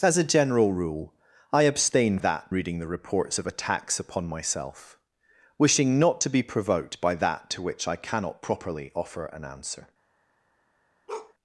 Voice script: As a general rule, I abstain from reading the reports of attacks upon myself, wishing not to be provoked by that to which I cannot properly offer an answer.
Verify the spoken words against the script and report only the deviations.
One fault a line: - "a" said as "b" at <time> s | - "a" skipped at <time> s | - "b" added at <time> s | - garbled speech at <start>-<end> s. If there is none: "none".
- "from" said as "that" at 2.2 s